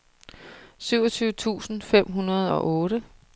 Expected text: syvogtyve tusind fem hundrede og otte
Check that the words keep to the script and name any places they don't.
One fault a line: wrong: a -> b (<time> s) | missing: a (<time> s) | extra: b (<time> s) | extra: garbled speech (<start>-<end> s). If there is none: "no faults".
no faults